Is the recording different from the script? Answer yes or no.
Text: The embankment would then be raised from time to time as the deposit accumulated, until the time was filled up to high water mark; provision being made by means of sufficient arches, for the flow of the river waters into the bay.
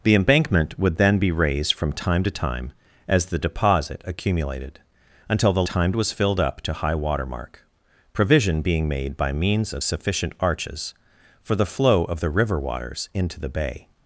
no